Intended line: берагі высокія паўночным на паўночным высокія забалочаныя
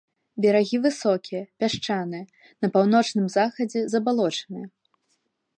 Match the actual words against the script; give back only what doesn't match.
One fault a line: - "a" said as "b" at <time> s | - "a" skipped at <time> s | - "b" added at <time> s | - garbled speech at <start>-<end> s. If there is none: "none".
- "паўночным" said as "пясчаныя" at 1.6 s
- "высокія" said as "захадзе" at 3.4 s